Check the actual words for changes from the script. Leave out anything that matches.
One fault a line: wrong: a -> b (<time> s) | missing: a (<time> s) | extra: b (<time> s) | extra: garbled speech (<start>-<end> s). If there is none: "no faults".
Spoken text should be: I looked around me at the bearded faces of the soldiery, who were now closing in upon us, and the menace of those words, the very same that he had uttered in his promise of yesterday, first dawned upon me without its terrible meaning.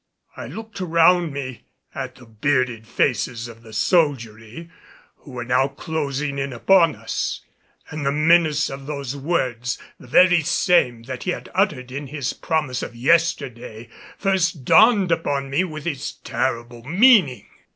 wrong: without -> with (15.6 s)